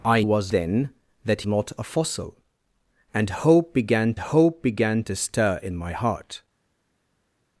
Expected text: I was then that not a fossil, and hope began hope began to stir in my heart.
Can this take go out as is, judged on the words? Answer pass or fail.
pass